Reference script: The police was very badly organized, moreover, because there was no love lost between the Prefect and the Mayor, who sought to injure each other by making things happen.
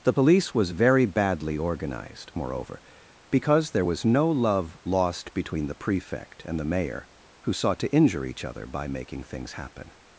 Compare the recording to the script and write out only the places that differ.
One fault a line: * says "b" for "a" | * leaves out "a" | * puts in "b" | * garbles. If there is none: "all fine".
all fine